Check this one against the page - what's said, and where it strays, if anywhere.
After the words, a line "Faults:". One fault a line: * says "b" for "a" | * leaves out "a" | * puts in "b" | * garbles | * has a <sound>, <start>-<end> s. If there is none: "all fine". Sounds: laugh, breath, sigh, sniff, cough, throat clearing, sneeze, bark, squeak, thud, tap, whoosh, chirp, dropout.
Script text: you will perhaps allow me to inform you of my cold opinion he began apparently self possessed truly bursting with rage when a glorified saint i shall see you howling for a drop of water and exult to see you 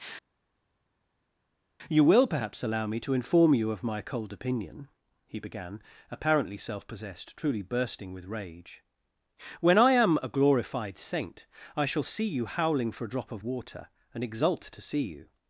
you will perhaps allow me to inform you of my cold opinion he began apparently self possessed truly bursting with rage when i am a glorified saint i shall see you howling for a drop of water and exult to see you
Faults:
* puts in "i am"